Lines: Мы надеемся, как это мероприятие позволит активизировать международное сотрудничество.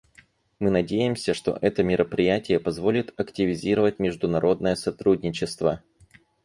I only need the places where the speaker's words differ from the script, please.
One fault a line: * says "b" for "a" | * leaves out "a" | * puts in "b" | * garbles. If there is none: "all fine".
* says "что" for "как"